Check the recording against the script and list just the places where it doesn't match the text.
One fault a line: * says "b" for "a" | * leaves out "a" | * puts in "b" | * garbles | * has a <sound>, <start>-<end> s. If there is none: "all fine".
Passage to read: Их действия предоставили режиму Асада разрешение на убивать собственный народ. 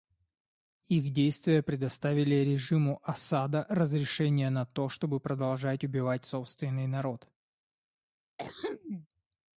* puts in "то чтобы продолжать"
* has a throat clearing, 8.4-9.1 s